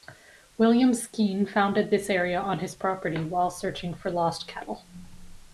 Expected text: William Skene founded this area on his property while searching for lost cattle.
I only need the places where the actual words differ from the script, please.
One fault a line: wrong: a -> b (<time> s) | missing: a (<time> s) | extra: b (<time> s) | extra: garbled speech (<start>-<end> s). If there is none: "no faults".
no faults